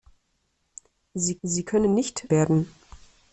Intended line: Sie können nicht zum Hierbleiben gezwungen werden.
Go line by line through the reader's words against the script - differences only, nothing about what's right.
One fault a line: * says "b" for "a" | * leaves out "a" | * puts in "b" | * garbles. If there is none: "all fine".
* puts in "sie"
* leaves out "zum Hierbleiben gezwungen"